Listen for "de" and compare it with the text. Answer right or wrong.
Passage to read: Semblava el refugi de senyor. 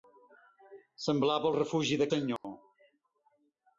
right